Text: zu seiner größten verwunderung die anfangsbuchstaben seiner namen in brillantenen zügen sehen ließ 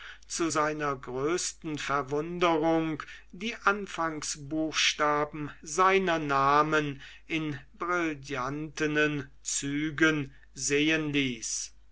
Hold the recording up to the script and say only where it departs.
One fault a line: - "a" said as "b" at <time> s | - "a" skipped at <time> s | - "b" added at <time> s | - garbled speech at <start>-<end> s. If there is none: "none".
none